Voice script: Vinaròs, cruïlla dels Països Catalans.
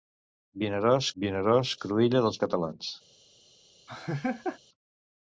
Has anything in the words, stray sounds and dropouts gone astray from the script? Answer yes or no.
yes